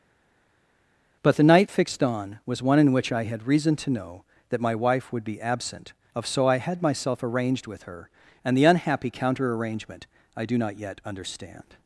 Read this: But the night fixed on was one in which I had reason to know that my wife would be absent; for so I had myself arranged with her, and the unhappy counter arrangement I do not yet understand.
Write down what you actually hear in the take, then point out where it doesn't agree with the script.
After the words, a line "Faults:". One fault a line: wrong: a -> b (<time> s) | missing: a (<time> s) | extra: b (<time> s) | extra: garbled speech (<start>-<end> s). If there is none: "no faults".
But the night fixed on was one in which I had reason to know that my wife would be absent; of so I had myself arranged with her, and the unhappy counter arrangement I do not yet understand.
Faults:
wrong: for -> of (6.2 s)